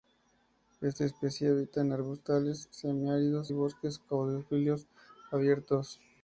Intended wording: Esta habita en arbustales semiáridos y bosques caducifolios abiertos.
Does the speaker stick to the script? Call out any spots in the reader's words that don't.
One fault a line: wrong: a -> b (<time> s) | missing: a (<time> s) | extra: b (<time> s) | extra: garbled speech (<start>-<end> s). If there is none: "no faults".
extra: especie (1.1 s)